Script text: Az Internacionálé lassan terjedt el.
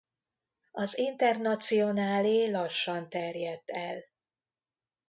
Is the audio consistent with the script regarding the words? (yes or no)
yes